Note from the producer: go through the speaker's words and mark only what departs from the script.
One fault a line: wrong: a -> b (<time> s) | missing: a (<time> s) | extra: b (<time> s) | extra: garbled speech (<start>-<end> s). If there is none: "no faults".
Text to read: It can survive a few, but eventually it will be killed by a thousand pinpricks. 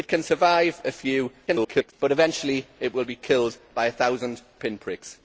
extra: garbled speech (1.5-1.9 s)